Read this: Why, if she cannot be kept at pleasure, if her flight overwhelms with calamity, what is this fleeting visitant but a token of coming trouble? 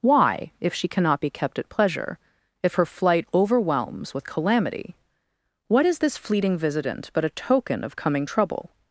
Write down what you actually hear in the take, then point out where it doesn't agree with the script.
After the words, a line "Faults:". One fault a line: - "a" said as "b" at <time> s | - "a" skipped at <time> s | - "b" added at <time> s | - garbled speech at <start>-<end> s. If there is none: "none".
Why, if she cannot be kept at pleasure, if her flight overwhelms with calamity, what is this fleeting visitant but a token of coming trouble?
Faults:
none